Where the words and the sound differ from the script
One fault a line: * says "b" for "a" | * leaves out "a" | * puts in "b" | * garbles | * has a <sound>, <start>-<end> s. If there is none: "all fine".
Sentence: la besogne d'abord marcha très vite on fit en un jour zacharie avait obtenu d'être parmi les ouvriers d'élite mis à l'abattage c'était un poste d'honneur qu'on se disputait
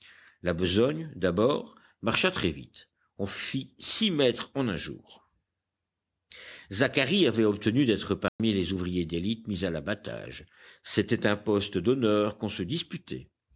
* puts in "six mètres"
* has a dropout, 8.3-8.4 s